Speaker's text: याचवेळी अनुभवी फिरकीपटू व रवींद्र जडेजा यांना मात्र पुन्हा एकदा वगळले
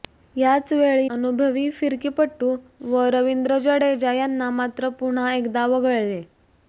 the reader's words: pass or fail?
pass